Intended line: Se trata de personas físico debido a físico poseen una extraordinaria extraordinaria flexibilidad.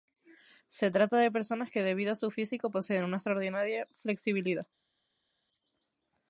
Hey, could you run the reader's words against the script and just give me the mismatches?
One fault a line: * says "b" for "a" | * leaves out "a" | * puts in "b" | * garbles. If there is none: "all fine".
* says "que" for "físico"
* puts in "su"
* leaves out "extraordinaria"